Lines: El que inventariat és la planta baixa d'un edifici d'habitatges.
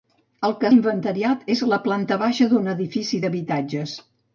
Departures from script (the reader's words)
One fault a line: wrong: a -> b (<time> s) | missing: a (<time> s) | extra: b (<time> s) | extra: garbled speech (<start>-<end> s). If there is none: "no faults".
no faults